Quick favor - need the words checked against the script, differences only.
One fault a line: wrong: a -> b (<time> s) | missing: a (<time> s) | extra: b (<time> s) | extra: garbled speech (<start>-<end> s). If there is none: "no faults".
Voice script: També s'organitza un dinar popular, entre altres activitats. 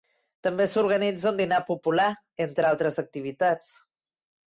no faults